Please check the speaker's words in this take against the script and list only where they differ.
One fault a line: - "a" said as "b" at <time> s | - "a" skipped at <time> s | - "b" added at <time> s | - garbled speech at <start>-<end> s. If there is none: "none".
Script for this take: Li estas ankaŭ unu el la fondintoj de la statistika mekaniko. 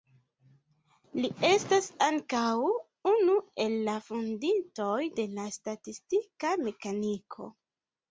none